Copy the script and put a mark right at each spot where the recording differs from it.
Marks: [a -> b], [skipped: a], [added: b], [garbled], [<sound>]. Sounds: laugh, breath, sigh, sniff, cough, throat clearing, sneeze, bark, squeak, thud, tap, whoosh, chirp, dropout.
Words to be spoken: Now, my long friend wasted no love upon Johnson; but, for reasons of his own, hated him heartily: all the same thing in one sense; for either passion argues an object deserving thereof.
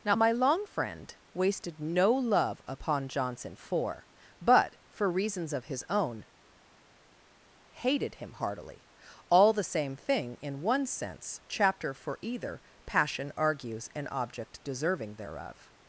Now, my long friend wasted no love upon Johnson; [added: for] but, for reasons of his own, hated him heartily: all the same thing in one sense; [added: chapter] for either passion argues an object deserving thereof.